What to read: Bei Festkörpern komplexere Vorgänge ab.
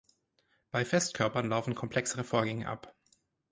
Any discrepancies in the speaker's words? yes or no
yes